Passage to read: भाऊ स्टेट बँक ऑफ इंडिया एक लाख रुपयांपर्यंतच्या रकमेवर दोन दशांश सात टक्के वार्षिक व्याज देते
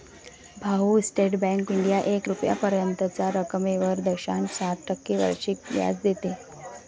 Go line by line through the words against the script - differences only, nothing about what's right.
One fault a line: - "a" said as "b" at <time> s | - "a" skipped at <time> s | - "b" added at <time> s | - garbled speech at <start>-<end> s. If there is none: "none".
- "ऑफ" skipped at 1.7 s
- "लाख" skipped at 2.3 s
- "दोन" skipped at 4.0 s